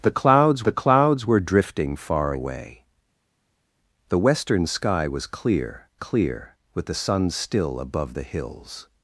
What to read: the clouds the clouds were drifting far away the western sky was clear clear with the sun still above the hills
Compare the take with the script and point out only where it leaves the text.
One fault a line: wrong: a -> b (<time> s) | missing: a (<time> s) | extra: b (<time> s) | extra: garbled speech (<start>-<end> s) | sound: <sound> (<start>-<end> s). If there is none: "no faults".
no faults